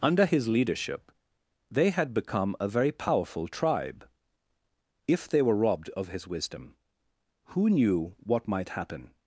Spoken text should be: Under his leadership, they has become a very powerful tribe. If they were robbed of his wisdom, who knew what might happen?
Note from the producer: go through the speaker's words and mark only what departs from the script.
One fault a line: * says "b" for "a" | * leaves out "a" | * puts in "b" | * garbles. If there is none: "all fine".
* says "had" for "has"